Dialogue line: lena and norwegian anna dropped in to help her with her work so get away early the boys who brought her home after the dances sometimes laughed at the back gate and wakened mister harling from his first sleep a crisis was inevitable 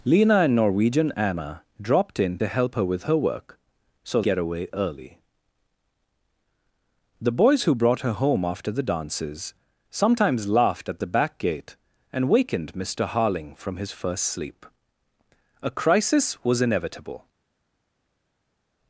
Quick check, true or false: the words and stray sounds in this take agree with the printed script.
true